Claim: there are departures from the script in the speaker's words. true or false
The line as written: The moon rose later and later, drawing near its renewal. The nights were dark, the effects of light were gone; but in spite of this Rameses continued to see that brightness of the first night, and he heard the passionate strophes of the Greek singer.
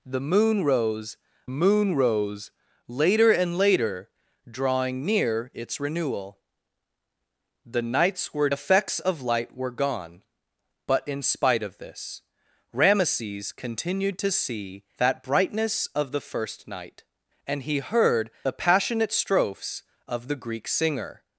true